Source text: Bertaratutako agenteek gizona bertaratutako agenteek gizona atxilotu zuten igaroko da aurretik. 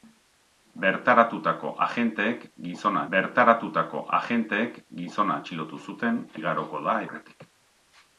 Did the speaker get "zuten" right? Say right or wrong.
right